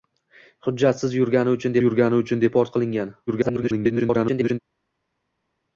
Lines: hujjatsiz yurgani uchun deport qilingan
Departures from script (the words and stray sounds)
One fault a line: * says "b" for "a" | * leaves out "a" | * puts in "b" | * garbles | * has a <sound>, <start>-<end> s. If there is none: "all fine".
* puts in "yurgani uchun"
* garbles